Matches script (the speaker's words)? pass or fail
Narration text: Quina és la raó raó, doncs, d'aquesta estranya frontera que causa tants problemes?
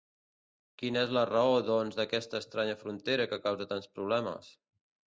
fail